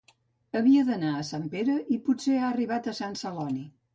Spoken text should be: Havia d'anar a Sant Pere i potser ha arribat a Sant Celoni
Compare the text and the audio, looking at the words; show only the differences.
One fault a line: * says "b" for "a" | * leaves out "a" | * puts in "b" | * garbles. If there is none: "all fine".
all fine